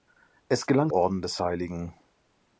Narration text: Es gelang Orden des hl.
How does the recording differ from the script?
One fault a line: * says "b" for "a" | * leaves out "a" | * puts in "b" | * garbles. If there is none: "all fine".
all fine